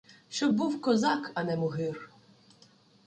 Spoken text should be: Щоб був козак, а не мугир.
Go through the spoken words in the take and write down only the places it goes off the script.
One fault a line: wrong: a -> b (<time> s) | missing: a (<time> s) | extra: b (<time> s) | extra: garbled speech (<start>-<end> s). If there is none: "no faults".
no faults